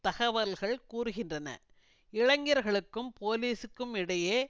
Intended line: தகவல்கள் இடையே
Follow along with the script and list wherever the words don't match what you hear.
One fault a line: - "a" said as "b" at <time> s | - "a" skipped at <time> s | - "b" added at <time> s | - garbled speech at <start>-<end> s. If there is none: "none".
- "கூறுகின்றன இளைஞர்களுக்கும் போலீசுக்கும்" added at 0.9 s